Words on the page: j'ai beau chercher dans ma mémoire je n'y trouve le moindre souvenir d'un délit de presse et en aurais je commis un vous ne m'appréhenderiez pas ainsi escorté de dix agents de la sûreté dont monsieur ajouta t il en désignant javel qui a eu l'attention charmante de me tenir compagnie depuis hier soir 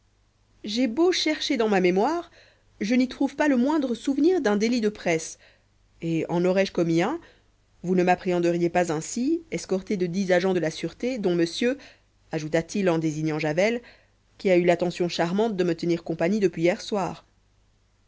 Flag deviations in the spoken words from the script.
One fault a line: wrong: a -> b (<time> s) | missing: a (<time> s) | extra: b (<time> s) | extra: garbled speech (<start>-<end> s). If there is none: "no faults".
extra: pas (3.4 s)